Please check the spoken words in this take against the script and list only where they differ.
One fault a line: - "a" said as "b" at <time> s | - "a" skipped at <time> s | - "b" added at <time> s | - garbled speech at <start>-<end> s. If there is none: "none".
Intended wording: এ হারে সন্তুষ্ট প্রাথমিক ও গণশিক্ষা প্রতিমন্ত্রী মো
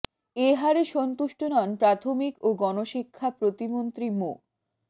- "নন" added at 1.5 s